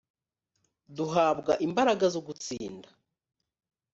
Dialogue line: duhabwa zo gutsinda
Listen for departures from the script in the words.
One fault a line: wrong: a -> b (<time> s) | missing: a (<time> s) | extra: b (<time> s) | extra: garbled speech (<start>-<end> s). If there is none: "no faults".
extra: imbaraga (1.7 s)